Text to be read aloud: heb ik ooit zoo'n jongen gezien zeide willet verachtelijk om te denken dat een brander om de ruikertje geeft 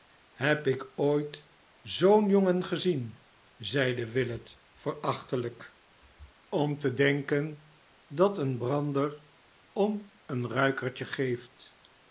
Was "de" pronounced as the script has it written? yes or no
no